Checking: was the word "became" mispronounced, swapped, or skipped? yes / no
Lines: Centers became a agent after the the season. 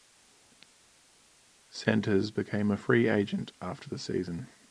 no